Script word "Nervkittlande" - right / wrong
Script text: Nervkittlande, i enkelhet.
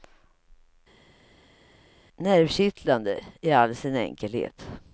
right